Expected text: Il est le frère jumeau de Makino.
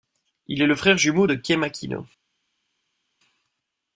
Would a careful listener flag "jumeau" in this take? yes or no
no